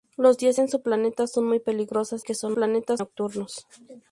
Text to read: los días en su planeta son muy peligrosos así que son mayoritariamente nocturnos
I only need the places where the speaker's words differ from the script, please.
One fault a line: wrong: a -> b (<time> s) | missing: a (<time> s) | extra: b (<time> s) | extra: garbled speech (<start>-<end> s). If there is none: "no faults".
missing: así (2.2 s)
wrong: mayoritariamente -> planeta (2.5 s)